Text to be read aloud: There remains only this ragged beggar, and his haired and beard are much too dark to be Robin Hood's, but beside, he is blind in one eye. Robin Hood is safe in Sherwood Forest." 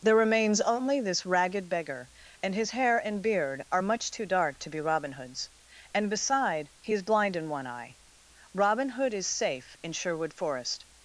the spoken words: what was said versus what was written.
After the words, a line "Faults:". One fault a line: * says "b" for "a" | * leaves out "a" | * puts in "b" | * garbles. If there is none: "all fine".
There remains only this ragged beggar, and his hair and beard are much too dark to be Robin Hood's, and beside, he is blind in one eye. Robin Hood is safe in Sherwood Forest."
Faults:
* says "hair" for "haired"
* says "and" for "but"